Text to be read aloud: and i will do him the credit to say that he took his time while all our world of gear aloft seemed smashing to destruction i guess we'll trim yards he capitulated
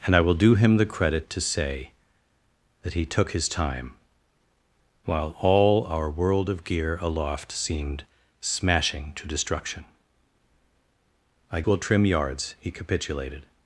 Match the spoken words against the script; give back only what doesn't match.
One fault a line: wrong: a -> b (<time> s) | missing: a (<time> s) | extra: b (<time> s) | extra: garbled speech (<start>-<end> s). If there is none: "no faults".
missing: guess (11.6 s)